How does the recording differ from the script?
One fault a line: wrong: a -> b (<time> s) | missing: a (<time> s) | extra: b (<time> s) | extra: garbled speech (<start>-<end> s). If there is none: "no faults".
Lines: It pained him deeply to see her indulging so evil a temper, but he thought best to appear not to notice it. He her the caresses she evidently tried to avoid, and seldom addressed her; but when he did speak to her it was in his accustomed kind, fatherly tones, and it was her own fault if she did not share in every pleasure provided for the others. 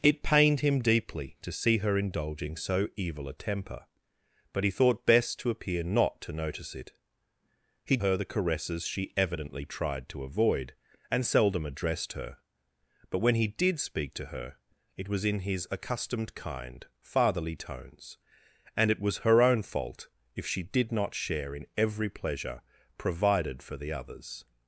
no faults